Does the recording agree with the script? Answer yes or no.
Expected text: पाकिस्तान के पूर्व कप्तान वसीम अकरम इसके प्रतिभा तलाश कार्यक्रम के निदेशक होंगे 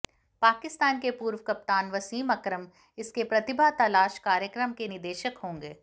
yes